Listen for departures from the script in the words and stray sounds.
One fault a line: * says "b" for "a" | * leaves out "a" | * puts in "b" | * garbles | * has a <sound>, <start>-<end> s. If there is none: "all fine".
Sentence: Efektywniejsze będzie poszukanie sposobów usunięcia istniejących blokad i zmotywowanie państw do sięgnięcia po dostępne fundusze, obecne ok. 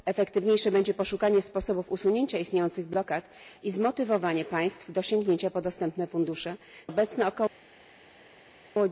all fine